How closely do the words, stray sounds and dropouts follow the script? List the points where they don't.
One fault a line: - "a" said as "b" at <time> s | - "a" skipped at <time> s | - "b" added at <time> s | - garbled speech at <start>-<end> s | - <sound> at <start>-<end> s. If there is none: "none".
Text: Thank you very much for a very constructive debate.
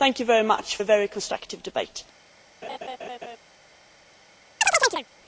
- "for" skipped at 0.8 s
- laugh at 2.6-3.4 s
- chirp at 4.6-5.1 s